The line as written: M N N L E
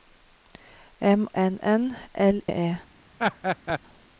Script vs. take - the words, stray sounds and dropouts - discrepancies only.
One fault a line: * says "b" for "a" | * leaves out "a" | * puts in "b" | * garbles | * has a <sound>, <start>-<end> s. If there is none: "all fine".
* has a laugh, 3.2-3.8 s